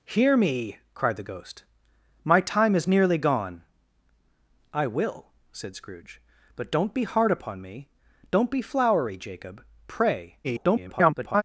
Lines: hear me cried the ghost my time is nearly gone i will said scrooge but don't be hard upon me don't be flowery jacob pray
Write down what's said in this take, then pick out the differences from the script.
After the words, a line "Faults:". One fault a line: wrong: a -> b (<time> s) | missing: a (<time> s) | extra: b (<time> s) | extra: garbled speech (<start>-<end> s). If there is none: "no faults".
hear me cried the ghost my time is nearly gone i will said scrooge but don't be hard upon me don't be flowery jacob pray [garbled]
Faults:
extra: garbled speech (10.4-11.4 s)